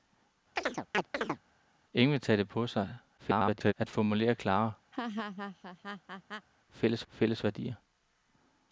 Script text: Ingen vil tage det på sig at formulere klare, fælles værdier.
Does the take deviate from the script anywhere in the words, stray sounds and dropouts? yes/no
yes